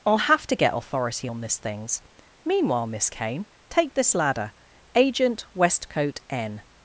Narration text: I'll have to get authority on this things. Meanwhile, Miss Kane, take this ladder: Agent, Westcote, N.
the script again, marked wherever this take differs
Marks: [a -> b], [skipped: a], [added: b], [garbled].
I'll have to get authority on this things. Meanwhile, Miss Kane, take this ladder: Agent, Westcote, N.